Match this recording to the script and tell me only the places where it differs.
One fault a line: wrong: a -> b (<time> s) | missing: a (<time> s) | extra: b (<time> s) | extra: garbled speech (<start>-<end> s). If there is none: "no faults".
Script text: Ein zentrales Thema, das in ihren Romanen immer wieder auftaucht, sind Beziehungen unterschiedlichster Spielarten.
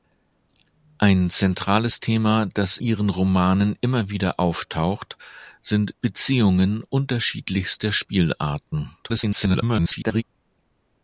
missing: in (2.8 s)
extra: garbled speech (9.0-10.2 s)